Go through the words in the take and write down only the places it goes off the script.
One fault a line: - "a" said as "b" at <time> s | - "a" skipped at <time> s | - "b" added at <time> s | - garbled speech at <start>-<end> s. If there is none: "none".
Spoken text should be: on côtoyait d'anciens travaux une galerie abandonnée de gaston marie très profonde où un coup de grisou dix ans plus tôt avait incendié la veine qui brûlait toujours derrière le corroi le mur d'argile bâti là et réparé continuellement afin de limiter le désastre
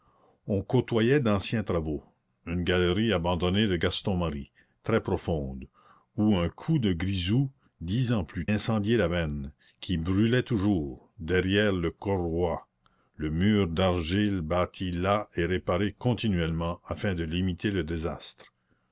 - "tôt avait" skipped at 8.5 s